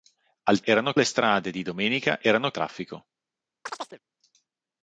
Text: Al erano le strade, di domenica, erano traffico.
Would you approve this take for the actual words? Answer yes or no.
yes